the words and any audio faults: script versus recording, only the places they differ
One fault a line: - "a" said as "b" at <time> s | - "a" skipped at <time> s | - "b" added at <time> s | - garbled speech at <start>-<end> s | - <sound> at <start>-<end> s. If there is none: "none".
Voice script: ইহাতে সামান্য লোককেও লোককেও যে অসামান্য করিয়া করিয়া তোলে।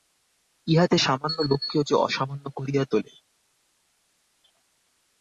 - "লোককেও" skipped at 1.8 s
- "করিয়া" skipped at 2.8 s